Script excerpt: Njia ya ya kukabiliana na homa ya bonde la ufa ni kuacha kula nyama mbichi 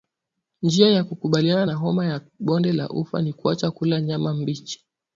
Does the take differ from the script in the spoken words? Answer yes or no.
yes